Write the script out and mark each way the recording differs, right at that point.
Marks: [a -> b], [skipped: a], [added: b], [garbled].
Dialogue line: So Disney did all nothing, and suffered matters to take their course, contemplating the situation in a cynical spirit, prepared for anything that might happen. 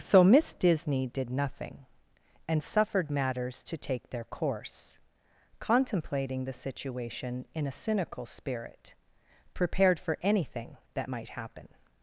So [added: Miss] Disney did [skipped: all] nothing, and suffered matters to take their course, contemplating the situation in a cynical spirit, prepared for anything that might happen.